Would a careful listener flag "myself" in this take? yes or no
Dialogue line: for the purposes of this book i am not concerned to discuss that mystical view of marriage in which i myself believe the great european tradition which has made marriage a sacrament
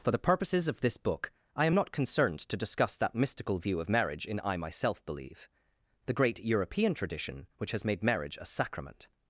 no